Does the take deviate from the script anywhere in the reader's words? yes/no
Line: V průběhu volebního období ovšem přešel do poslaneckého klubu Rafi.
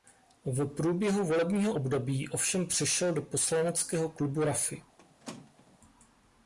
no